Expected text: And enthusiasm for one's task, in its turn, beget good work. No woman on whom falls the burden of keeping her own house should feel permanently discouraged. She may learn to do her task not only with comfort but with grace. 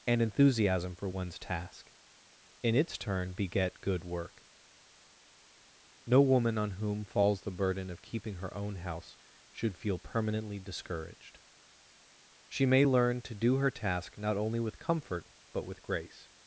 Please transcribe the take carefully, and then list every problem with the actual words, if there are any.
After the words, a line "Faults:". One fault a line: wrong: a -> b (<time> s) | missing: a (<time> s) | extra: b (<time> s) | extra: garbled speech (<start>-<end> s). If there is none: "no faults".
And enthusiasm for one's task, in its turn, beget good work. No woman on whom falls the burden of keeping her own house should feel permanently discouraged. She may learn to do her task not only with comfort but with grace.
Faults:
no faults